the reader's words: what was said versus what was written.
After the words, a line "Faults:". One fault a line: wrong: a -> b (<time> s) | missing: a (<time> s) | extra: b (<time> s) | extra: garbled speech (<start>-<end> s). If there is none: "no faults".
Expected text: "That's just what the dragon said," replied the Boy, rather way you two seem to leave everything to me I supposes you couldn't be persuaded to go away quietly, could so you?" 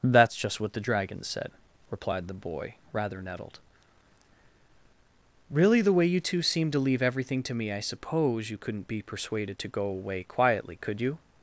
"That's just what the dragon said," replied the Boy, rather nettled. "Really, the way you two seem to leave everything to me I suppose you couldn't be persuaded to go away quietly, could you?"
Faults:
extra: nettled Really the (3.2 s)
wrong: supposes -> suppose (7.8 s)
missing: so (11.0 s)